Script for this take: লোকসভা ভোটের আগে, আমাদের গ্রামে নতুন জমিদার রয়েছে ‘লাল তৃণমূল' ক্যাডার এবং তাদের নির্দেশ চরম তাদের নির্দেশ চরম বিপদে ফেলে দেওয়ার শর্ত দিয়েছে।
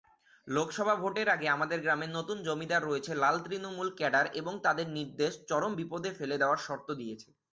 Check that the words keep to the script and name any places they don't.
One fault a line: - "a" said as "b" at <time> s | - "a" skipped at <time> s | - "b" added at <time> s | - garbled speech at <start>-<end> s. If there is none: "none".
- "তাদের নির্দেশ চরম" skipped at 5.7 s